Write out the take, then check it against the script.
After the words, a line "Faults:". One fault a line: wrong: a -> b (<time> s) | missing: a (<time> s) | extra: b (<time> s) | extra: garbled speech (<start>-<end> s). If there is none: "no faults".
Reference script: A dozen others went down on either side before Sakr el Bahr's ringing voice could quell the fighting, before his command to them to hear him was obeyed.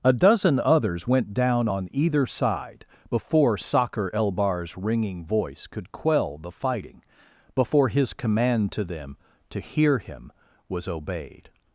A dozen others went down on either side before Sakr el Bahr's ringing voice could quell the fighting, before his command to them to hear him was obeyed.
Faults:
no faults